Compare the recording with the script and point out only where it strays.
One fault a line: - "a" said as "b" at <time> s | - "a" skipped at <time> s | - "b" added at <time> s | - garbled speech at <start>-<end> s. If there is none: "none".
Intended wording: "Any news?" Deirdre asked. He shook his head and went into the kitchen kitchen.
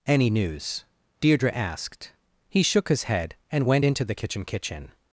none